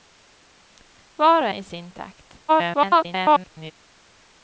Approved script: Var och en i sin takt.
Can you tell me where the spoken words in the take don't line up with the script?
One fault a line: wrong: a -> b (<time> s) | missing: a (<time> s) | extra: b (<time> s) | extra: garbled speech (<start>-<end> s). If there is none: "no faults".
missing: en (1.5 s)
extra: garbled speech (2.5-3.7 s)